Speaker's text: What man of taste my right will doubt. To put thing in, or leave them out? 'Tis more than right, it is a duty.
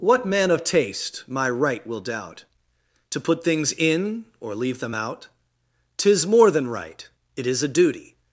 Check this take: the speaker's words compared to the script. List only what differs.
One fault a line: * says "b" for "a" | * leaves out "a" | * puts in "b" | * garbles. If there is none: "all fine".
* says "things" for "thing"